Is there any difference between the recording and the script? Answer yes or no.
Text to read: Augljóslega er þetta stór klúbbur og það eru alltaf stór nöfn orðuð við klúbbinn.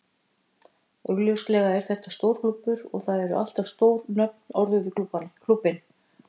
no